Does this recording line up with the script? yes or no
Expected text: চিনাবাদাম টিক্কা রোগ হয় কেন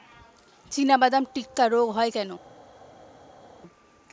yes